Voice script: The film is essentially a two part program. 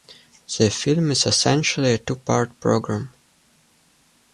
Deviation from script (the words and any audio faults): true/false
false